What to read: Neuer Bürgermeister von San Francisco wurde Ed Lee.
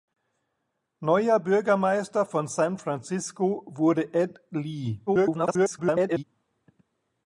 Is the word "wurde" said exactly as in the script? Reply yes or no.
yes